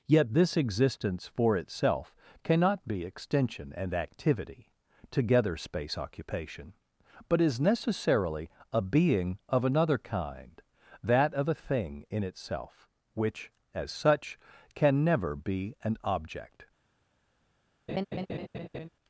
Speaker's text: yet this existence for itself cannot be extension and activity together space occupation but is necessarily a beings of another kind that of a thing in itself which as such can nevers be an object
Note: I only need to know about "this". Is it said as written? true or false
true